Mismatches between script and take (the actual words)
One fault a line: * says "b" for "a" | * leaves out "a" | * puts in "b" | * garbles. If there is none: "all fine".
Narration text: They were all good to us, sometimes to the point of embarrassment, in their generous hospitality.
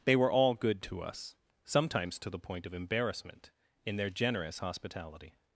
all fine